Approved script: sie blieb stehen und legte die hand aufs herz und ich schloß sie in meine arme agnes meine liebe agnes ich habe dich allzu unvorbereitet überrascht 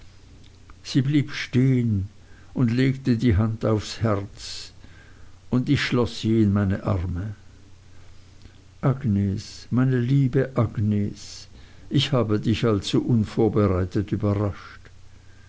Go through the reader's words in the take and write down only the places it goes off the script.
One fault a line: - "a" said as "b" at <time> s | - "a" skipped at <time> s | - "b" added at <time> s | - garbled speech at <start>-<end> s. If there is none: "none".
none